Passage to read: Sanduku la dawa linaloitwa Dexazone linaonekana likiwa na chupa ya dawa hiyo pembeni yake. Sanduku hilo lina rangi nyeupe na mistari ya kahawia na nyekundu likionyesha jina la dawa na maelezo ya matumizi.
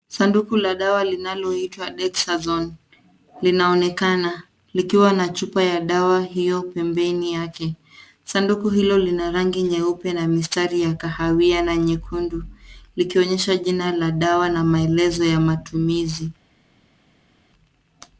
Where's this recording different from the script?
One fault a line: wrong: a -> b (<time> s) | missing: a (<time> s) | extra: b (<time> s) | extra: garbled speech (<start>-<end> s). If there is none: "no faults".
no faults